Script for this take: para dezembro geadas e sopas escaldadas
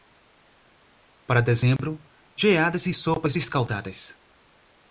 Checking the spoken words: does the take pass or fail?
pass